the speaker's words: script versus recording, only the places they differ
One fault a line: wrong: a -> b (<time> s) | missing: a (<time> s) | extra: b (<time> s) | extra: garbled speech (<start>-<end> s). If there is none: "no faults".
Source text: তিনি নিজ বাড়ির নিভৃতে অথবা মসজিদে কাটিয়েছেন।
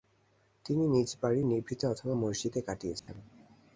no faults